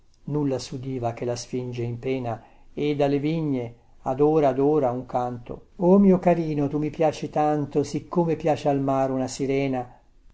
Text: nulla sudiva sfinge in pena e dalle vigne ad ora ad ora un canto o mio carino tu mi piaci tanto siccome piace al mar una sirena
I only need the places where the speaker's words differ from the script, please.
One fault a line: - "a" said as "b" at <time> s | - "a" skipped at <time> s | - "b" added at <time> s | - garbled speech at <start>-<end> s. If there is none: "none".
- "che la" added at 1.1 s